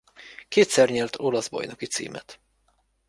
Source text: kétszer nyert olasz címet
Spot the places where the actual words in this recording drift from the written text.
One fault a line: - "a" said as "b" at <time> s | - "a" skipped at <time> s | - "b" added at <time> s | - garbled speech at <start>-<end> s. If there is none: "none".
- "bajnoki" added at 1.5 s